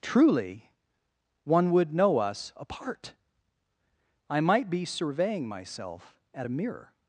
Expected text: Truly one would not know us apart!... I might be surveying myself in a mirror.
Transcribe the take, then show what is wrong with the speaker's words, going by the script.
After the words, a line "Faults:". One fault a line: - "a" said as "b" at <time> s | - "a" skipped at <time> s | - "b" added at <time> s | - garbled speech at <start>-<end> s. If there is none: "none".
Truly one would know us apart!... I might be surveying myself at a mirror.
Faults:
- "not" skipped at 1.9 s
- "in" said as "at" at 6.3 s